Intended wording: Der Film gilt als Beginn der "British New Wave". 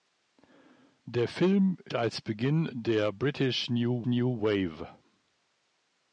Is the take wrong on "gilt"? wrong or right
wrong